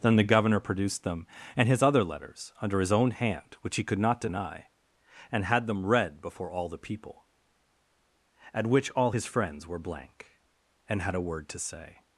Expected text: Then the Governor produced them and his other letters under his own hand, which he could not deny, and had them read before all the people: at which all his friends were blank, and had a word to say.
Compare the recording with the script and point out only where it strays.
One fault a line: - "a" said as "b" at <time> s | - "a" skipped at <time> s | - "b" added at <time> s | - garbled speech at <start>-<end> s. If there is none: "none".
none